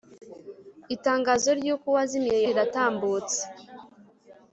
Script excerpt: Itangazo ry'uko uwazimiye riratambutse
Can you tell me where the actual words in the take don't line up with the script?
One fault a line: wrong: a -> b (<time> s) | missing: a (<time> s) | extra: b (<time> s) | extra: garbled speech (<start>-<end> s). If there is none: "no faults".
no faults